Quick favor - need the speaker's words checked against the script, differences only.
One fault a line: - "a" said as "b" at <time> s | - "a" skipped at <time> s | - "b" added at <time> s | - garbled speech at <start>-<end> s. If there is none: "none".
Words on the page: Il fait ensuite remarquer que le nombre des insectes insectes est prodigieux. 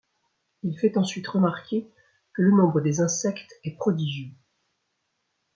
- "insectes" skipped at 3.5 s